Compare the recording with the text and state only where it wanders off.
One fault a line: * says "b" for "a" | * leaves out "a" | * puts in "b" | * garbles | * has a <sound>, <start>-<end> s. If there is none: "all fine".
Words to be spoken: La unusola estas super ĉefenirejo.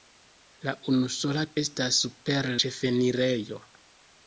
all fine